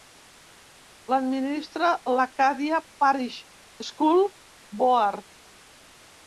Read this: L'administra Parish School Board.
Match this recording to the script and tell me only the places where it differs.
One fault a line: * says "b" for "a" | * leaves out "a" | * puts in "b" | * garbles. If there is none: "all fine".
* puts in "l'Acadia"